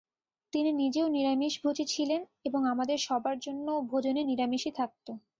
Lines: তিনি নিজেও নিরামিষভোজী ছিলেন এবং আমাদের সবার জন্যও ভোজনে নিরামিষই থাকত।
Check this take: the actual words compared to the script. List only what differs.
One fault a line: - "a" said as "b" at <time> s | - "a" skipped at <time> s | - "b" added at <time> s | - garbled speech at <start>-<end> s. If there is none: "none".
none